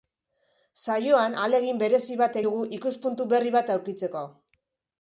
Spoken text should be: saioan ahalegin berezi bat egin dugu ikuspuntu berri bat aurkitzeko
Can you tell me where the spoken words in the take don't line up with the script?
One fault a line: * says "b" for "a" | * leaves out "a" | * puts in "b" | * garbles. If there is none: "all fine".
* leaves out "egin"